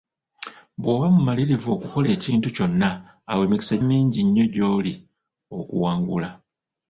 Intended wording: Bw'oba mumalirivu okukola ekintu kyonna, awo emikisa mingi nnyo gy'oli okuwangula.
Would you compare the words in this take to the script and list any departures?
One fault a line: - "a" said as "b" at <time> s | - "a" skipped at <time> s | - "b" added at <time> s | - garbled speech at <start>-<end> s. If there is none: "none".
none